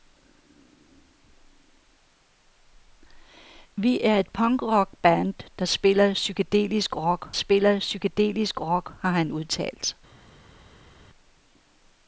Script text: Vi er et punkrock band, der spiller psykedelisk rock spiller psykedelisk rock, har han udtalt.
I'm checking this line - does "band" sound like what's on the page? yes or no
yes